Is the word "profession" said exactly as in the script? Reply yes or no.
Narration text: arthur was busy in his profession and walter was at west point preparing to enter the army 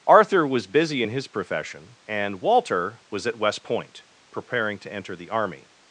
yes